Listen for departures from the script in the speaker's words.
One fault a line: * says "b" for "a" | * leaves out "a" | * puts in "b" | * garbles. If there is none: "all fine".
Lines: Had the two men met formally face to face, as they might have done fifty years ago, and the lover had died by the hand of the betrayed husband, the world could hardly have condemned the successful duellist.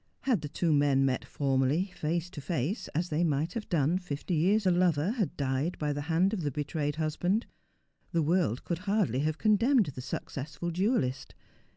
* leaves out "ago and"